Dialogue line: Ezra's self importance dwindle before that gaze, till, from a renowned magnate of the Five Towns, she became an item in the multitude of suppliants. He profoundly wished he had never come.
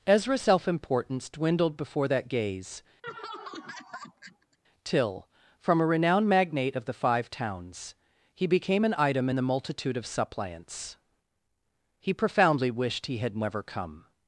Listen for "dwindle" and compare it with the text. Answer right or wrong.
wrong